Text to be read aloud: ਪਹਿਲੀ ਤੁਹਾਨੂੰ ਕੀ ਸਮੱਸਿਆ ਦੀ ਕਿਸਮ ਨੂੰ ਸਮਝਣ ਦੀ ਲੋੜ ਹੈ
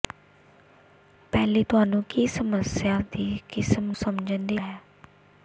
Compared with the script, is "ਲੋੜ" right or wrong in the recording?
wrong